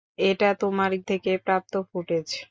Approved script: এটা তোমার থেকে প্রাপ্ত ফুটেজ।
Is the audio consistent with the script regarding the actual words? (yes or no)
yes